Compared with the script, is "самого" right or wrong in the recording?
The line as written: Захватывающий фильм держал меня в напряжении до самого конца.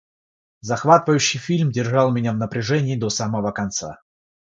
right